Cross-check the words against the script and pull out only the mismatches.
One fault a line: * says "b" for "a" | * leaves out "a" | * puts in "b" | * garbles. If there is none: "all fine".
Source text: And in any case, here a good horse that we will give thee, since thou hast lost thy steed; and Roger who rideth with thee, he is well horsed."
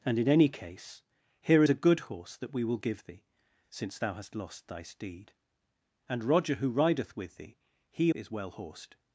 all fine